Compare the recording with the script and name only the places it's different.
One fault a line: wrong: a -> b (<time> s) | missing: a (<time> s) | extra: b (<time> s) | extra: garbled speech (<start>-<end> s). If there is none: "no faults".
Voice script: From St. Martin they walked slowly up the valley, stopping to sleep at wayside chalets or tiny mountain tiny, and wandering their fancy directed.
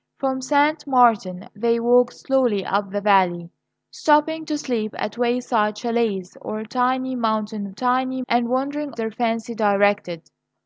no faults